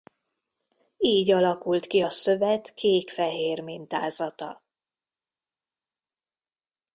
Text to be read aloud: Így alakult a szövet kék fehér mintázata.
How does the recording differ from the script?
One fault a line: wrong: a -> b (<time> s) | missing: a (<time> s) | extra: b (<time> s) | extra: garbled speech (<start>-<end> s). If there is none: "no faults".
extra: ki (1.9 s)